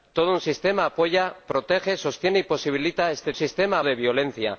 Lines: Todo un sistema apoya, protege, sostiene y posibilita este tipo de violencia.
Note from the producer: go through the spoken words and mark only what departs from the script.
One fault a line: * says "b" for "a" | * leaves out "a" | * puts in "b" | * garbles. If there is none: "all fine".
* says "sistema" for "tipo"